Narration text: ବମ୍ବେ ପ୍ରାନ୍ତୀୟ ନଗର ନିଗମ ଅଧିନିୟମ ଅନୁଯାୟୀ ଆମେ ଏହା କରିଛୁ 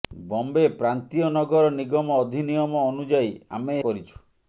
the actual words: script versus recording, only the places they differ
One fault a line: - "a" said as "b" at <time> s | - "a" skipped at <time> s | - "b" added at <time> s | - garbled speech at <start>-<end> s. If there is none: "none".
- "ଏହା" skipped at 3.8 s